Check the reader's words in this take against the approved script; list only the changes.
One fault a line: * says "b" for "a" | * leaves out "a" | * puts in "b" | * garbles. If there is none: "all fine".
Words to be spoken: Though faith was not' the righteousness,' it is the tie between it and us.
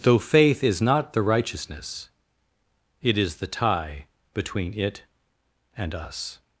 * says "is" for "was"